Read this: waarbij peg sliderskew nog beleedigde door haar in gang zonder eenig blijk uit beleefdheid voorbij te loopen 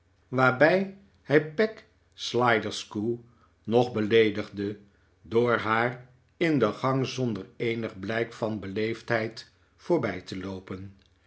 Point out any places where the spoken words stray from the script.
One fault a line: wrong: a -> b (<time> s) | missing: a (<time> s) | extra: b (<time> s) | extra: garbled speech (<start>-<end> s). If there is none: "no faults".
extra: hij (1.2 s)
extra: de (6.6 s)
wrong: uit -> van (8.3 s)